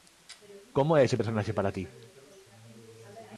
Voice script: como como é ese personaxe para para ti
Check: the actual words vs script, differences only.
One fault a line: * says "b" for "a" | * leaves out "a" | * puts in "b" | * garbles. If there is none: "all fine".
* leaves out "como"
* leaves out "para"